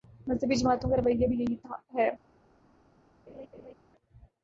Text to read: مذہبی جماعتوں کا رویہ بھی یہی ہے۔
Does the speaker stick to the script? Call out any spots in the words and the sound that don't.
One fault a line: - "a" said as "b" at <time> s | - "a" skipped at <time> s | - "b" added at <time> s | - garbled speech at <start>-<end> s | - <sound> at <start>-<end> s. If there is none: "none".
- laugh at 3.3-3.7 s